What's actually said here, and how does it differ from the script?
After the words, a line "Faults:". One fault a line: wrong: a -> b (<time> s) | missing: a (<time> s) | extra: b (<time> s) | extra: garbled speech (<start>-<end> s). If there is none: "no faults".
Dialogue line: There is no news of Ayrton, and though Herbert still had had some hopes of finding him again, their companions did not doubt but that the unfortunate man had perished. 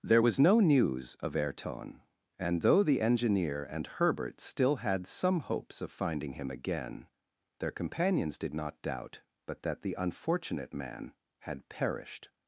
There was no news of Ayrton, and though the engineer and Herbert still had some hopes of finding him again, their companions did not doubt but that the unfortunate man had perished.
Faults:
wrong: is -> was (0.2 s)
extra: the engineer and (2.8 s)
missing: had (5.0 s)